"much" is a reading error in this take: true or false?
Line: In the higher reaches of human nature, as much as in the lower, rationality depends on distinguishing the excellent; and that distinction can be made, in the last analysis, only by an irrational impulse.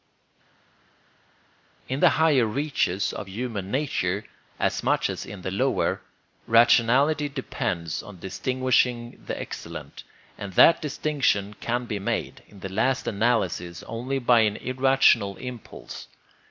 false